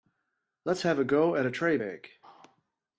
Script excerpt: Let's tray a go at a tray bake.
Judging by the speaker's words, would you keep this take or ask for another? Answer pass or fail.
fail